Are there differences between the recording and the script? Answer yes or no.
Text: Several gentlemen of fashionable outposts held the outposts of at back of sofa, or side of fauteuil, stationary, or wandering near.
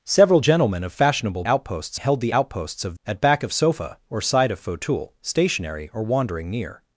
no